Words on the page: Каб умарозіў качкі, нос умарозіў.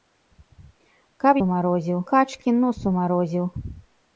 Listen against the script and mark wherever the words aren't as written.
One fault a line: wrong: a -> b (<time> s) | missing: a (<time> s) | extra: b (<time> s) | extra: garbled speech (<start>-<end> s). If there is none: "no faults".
no faults